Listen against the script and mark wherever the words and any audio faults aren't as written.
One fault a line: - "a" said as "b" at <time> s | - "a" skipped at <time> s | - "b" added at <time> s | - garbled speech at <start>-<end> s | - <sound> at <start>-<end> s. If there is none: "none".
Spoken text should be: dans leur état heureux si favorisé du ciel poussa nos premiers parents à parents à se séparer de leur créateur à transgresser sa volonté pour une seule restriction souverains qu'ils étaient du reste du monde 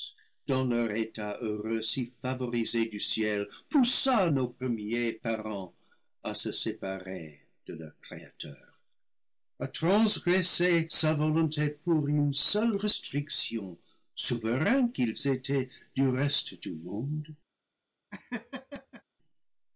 - "parents à" skipped at 6.3 s
- laugh at 18.1-19.0 s